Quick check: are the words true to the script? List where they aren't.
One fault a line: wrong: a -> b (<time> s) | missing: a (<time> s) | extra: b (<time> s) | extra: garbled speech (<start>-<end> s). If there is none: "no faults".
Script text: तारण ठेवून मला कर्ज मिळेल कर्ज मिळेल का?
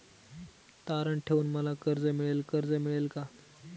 no faults